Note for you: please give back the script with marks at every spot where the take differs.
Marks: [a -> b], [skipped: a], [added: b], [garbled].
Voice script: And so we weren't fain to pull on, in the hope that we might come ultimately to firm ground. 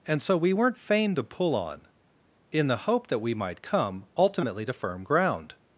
And so we weren't fain to pull on, in the hope that we might come ultimately to firm ground.